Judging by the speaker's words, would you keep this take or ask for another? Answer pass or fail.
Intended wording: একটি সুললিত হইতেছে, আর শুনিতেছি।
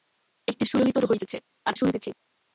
pass